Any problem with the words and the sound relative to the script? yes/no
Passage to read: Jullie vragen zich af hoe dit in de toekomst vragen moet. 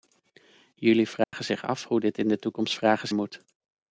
yes